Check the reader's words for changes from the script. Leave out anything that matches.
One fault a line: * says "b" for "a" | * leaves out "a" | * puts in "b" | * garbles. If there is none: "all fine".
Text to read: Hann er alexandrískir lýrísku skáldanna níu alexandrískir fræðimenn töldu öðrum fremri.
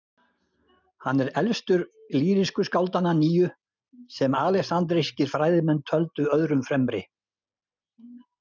* says "elstur" for "alexandrískir"
* puts in "sem"